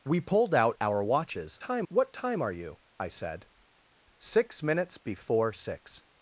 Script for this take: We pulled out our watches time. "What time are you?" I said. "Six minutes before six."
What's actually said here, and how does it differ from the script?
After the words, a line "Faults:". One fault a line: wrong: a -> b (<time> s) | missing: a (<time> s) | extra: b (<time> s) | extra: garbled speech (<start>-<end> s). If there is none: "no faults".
We pulled out our watches time. "What time are you?" I said. "Six minutes before six."
Faults:
no faults